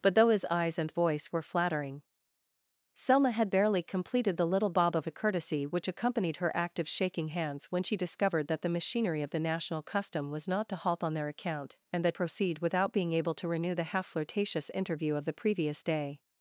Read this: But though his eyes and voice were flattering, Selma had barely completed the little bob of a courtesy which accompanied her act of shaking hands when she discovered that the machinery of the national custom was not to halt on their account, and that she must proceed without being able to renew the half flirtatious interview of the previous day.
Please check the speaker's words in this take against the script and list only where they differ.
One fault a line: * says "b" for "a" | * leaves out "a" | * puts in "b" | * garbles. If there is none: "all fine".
* leaves out "she must"